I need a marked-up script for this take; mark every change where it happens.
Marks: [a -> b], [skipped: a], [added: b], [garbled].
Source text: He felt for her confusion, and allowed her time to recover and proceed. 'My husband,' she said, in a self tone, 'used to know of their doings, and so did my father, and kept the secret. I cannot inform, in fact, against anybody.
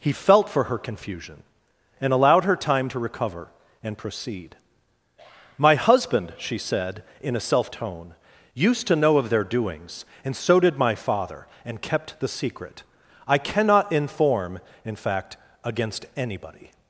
He felt for her confusion, and allowed her time to recover and proceed. 'My husband,' she said, in a self tone, 'used to know of their doings, and so did my father, and kept the secret. I cannot inform, in fact, against anybody.